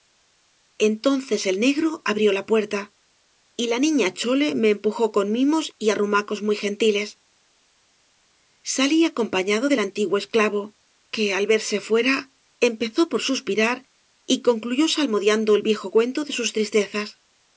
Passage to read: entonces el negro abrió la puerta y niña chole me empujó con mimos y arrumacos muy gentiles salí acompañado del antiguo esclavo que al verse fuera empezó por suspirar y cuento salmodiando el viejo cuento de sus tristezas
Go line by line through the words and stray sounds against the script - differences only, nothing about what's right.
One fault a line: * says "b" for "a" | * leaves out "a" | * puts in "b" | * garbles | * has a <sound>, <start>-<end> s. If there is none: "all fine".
* puts in "la"
* says "concluyó" for "cuento"